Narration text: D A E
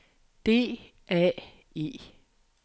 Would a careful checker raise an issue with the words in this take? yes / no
no